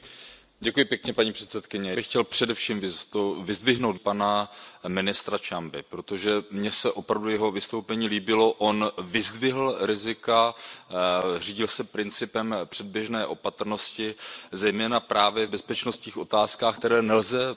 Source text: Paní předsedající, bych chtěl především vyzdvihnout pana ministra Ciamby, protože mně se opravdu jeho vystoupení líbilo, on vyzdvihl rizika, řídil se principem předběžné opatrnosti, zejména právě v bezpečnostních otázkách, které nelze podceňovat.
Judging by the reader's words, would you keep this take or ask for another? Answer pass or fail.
pass